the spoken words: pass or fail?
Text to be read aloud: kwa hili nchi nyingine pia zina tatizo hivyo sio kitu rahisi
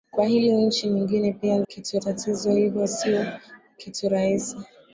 fail